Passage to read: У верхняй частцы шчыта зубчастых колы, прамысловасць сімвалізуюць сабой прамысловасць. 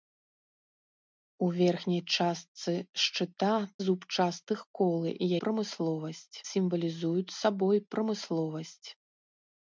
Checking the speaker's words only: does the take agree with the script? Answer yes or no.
yes